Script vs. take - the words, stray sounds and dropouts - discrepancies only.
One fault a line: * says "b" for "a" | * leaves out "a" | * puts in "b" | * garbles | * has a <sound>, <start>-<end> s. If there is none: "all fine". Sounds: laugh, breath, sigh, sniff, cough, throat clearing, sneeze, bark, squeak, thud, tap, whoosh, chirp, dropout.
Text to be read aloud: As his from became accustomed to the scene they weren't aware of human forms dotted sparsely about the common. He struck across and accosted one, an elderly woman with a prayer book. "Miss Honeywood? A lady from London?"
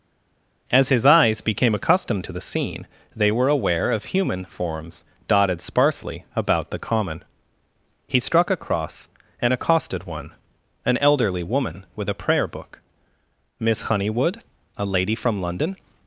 * says "eyes" for "from"
* says "were" for "weren't"